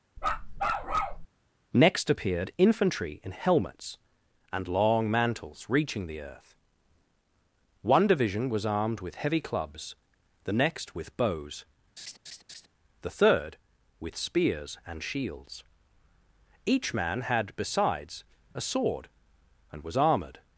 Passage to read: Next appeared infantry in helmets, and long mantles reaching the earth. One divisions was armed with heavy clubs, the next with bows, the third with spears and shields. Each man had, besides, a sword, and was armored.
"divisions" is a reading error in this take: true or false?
true